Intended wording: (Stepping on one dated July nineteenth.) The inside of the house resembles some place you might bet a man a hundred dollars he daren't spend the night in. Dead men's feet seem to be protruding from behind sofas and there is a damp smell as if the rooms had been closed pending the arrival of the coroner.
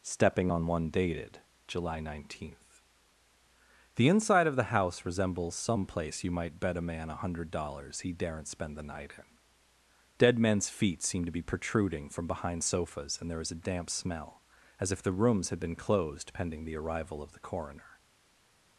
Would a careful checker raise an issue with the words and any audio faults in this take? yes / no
no